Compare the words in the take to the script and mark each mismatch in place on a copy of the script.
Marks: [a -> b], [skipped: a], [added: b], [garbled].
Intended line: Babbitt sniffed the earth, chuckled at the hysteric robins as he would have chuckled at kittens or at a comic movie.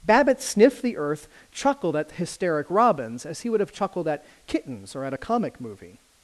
Babbitt sniffed the earth, chuckled at [skipped: the] hysteric robins as he would have chuckled at kittens or at a comic movie.